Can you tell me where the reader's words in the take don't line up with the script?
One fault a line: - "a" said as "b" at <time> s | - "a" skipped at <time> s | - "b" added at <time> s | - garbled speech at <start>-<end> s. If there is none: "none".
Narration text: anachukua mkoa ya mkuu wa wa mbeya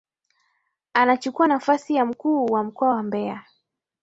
- "mkoa" said as "nafasi" at 1.4 s
- "mkoa" added at 2.6 s